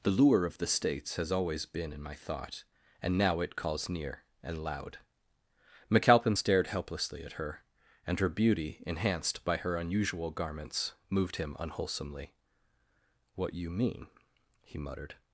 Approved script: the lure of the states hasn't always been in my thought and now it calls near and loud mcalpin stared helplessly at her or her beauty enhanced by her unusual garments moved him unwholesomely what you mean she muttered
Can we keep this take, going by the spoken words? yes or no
no